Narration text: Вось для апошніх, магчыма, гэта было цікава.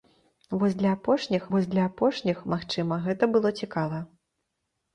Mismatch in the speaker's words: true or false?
true